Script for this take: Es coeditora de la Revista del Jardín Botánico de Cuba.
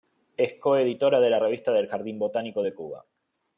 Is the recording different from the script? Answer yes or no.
no